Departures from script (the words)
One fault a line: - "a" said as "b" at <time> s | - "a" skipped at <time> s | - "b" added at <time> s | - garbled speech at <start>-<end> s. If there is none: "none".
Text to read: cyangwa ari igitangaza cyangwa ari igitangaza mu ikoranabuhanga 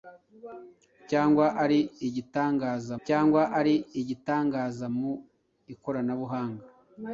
none